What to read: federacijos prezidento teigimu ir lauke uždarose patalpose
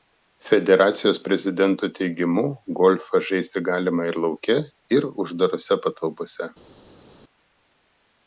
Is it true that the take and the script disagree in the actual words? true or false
true